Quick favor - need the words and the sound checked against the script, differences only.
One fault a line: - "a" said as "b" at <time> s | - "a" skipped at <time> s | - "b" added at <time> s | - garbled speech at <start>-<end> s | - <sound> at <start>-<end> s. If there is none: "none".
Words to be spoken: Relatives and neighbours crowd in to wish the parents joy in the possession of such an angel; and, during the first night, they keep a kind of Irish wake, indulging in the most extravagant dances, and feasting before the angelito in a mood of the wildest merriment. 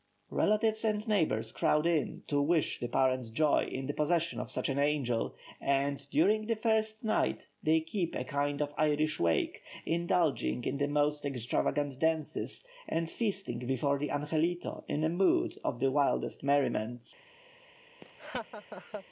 - laugh at 18.0-19.0 s